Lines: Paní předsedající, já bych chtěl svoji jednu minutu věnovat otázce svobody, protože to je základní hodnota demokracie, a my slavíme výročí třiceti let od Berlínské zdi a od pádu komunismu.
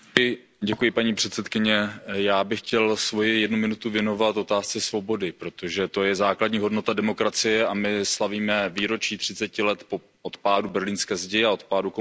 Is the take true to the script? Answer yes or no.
no